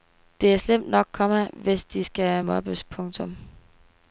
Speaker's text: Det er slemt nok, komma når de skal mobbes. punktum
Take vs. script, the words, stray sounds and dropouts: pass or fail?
fail